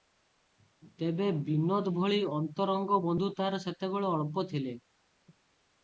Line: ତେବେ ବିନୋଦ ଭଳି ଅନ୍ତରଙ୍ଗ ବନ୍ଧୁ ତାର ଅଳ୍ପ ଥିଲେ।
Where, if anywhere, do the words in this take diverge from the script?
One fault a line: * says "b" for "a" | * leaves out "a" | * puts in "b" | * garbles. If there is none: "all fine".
* puts in "ସେତେବେଳେ"